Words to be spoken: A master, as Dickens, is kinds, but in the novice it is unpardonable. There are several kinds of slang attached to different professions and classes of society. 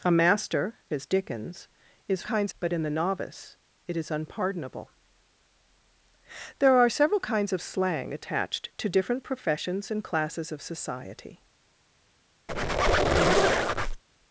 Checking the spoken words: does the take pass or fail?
pass